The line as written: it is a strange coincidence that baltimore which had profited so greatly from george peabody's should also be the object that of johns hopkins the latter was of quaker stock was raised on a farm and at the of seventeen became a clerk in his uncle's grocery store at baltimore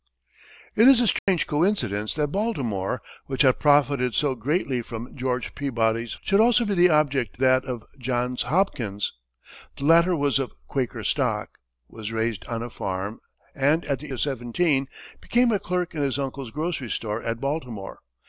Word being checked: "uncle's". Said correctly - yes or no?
yes